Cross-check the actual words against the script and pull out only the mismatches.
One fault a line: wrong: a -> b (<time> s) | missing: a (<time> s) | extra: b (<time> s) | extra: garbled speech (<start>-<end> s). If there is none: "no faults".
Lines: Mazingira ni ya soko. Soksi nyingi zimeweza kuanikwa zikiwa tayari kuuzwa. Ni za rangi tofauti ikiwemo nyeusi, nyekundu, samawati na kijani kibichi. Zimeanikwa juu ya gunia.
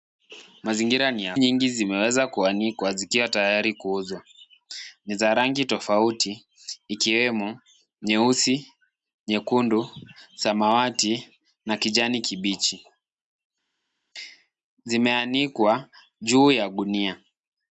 missing: soko Soksi (1.4 s)